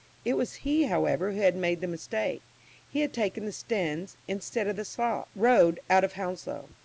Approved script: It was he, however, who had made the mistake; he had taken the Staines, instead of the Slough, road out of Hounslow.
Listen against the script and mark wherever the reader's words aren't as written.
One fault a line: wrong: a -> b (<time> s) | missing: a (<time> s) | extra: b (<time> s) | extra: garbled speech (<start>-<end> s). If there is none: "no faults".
no faults